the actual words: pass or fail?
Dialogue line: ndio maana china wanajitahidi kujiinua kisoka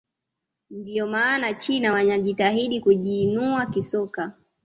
pass